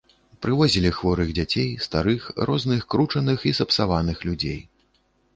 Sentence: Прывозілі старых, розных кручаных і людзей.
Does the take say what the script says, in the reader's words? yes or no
no